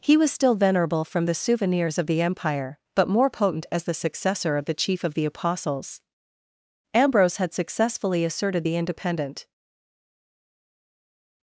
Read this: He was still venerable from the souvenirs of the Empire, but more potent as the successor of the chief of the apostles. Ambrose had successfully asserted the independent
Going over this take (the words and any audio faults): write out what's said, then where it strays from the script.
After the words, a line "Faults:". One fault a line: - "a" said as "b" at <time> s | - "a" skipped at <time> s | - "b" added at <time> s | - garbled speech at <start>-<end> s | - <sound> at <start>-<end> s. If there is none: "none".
He was still venerable from the souvenirs of the Empire, but more potent as the successor of the chief of the apostles. Ambrose had successfully asserted the independent
Faults:
none